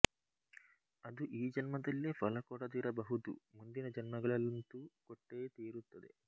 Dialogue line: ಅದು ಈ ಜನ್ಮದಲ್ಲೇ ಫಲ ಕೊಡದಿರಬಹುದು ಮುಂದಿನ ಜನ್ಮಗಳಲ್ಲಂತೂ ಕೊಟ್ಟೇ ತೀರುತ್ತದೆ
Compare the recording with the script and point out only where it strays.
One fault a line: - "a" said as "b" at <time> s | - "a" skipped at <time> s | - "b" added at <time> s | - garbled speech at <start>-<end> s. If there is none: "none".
none